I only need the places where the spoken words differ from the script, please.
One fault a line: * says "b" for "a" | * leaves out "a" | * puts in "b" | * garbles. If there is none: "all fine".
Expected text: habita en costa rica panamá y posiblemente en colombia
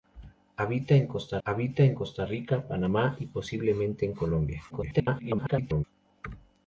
* puts in "habita en costa"
* garbles